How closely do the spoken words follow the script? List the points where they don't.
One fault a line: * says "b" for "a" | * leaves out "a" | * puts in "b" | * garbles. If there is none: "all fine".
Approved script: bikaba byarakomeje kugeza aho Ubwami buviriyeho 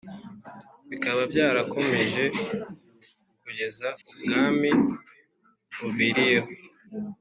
* leaves out "aho"